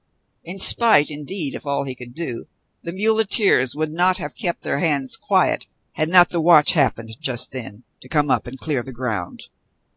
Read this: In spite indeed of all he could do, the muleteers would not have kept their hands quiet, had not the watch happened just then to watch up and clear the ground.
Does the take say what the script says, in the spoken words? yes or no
no